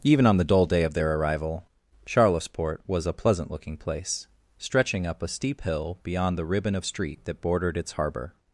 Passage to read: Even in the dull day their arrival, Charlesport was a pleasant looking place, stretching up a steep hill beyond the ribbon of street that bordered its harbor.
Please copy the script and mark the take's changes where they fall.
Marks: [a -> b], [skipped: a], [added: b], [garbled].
Even [in -> on] the dull day [added: of] their arrival, Charlesport was a pleasant looking place, stretching up a steep hill beyond the ribbon of street that bordered its harbor.